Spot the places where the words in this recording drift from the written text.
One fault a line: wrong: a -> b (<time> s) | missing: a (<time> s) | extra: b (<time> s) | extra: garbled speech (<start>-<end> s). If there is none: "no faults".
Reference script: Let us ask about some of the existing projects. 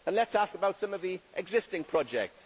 no faults